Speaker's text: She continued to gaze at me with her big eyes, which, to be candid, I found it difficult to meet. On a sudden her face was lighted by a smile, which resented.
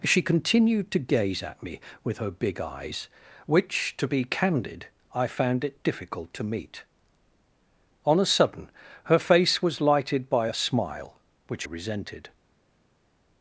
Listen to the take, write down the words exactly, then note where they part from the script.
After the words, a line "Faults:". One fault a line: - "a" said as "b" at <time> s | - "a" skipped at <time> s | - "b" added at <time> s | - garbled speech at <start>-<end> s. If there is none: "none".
She continued to gaze at me with her big eyes, which, to be candid, I found it difficult to meet. On a sudden her face was lighted by a smile, which resented.
Faults:
none